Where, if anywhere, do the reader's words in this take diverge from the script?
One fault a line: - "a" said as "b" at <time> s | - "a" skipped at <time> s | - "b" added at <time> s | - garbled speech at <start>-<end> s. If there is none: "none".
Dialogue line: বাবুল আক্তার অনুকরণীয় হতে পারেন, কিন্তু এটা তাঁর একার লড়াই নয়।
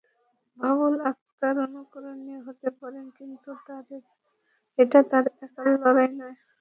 none